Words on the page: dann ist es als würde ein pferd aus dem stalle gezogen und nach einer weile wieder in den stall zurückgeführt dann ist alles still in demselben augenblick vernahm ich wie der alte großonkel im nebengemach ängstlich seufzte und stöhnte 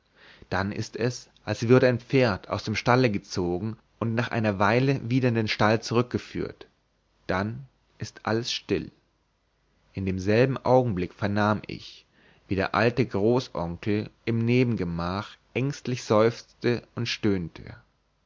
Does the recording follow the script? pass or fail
pass